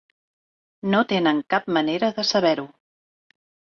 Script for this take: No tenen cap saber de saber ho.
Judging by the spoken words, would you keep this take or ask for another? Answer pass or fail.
fail